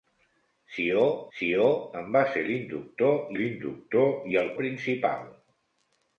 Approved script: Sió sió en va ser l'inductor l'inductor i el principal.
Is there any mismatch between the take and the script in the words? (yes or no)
no